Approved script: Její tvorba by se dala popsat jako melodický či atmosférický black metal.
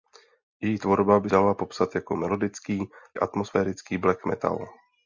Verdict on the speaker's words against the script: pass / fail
fail